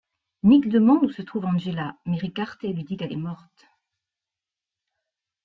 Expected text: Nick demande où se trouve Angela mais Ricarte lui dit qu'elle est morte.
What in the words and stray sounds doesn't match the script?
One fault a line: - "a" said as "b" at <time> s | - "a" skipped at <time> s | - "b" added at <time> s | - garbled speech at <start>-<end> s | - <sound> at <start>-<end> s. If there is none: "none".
none